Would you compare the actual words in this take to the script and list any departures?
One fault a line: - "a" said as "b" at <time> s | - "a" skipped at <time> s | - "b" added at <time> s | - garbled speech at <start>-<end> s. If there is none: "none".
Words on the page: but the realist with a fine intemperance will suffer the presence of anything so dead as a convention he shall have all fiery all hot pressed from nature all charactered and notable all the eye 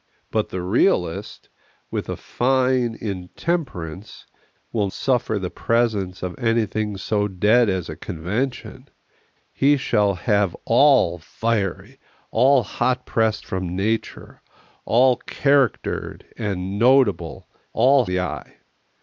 none